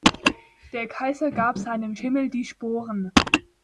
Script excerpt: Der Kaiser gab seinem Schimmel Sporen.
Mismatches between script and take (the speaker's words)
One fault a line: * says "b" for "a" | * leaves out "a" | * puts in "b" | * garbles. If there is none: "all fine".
* puts in "die"